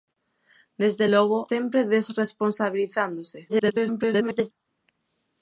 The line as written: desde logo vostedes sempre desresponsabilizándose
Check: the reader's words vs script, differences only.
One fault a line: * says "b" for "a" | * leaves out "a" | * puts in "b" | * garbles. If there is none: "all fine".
* leaves out "vostedes"
* garbles